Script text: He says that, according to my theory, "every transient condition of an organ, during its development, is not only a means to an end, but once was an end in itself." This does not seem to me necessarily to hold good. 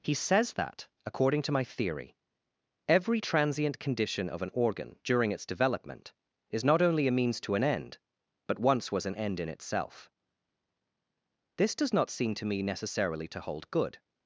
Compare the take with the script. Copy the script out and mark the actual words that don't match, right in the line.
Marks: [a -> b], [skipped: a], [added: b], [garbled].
He says that, according to my theory, "every transient condition of an organ, during its development, is not only a means to an end, but once was an end in itself." This does not seem to me necessarily to hold good.